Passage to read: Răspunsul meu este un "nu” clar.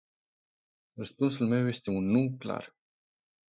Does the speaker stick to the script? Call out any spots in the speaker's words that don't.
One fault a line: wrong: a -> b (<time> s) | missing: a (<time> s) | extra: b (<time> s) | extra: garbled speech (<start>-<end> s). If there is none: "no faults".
no faults